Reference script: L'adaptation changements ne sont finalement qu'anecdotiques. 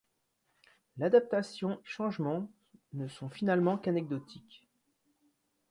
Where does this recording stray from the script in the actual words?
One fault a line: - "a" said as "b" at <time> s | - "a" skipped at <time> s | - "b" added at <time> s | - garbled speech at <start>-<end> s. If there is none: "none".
none